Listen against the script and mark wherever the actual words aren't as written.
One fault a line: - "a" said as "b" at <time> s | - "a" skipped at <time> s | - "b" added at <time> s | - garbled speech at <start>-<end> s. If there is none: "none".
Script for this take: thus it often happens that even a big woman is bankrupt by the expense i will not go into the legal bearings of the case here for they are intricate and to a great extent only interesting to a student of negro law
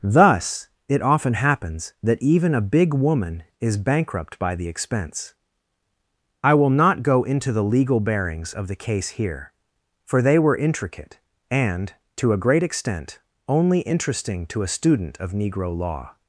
- "are" said as "were" at 10.4 s